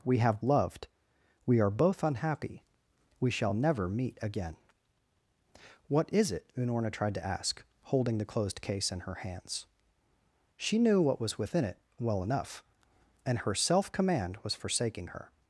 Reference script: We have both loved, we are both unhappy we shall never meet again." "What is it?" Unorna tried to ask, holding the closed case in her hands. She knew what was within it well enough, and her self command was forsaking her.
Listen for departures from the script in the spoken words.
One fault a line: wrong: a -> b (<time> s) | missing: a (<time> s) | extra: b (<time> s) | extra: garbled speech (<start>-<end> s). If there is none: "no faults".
missing: both (0.4 s)